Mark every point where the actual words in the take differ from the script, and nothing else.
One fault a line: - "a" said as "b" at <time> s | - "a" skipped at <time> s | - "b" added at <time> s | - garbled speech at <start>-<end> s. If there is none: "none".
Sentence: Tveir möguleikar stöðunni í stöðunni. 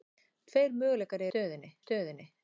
none